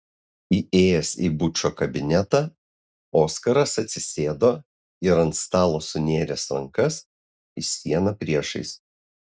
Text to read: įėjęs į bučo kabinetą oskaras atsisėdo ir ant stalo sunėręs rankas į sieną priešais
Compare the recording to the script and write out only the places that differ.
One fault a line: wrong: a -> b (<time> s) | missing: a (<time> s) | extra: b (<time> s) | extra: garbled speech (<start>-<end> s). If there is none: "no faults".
no faults